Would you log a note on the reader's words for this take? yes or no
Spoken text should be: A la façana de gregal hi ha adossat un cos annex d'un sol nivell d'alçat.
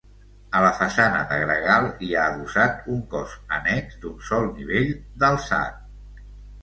no